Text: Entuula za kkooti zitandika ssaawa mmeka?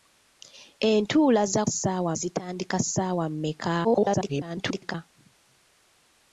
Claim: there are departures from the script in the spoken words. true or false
true